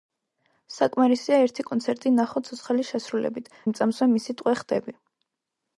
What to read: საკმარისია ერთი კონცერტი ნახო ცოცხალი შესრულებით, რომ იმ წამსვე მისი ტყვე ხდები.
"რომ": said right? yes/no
no